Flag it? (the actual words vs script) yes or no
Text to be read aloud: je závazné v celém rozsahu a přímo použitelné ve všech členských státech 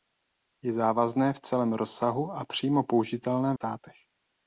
yes